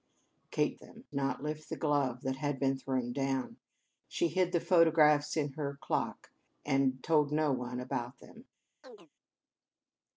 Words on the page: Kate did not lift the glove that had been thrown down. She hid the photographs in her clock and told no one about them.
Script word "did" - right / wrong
wrong